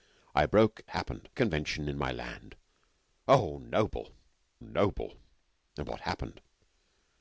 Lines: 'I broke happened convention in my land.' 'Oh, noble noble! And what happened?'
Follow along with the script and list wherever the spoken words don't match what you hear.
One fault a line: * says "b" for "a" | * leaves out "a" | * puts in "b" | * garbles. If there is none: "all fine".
all fine